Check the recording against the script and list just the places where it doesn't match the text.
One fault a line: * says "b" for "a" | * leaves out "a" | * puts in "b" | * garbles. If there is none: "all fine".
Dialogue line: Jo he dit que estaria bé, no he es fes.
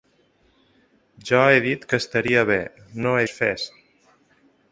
all fine